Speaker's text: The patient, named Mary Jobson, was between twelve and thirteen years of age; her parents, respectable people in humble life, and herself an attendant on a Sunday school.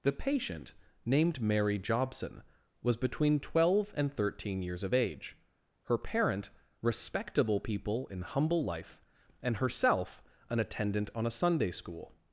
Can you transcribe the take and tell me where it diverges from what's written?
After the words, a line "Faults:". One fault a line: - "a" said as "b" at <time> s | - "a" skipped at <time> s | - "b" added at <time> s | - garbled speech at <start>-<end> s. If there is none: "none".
The patient, named Mary Jobson, was between twelve and thirteen years of age; her parent, respectable people in humble life, and herself an attendant on a Sunday school.
Faults:
- "parents" said as "parent" at 6.0 s